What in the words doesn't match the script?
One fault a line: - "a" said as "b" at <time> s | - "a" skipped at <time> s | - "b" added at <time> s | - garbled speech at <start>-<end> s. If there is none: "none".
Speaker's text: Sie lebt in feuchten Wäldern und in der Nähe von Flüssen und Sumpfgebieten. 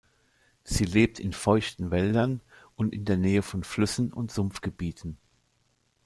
none